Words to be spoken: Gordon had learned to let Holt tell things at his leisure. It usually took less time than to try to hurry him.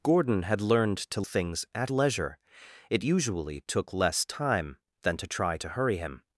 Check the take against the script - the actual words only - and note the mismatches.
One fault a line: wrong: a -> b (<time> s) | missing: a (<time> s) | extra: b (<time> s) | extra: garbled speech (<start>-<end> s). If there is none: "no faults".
missing: let Holt tell (1.2 s)
missing: his (1.9 s)